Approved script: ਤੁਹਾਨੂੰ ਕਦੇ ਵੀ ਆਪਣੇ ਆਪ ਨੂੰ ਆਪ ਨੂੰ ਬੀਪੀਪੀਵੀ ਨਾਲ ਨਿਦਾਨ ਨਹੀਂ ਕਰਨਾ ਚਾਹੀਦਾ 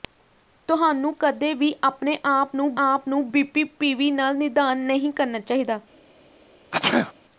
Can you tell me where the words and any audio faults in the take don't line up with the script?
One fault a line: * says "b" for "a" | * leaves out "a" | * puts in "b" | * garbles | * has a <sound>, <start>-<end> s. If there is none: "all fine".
* has a sneeze, 6.7-7.1 s